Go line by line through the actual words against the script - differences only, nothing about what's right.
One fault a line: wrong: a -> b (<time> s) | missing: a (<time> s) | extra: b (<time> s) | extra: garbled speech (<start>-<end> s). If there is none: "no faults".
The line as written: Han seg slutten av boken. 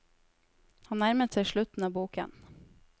extra: nærmet (1.0 s)